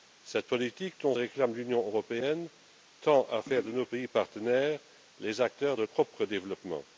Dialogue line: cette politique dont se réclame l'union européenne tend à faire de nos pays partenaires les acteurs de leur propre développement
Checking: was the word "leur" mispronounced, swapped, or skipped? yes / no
yes